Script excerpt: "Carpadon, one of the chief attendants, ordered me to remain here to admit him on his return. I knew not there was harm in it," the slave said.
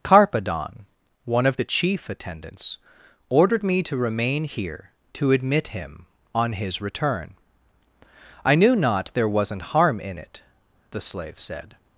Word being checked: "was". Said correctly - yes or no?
no